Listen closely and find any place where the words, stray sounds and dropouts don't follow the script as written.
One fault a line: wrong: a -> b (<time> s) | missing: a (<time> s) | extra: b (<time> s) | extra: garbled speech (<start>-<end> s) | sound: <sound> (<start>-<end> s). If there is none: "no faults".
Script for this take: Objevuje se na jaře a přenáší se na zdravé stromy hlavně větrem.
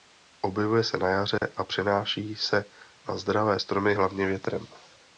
sound: dropout (1.4-1.4 s)